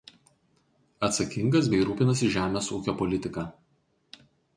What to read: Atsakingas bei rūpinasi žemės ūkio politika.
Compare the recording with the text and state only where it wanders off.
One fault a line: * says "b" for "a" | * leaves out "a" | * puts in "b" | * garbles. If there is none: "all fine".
all fine